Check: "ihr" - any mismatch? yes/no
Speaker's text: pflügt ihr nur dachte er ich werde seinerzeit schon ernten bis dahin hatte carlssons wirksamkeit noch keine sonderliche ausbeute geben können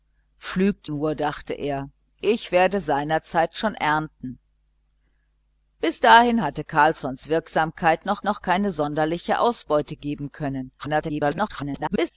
yes